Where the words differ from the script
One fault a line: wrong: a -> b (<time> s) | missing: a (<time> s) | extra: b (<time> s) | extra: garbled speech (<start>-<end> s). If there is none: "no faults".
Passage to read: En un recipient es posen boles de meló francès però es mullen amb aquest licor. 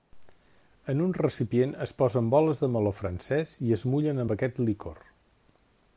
wrong: però -> i (3.7 s)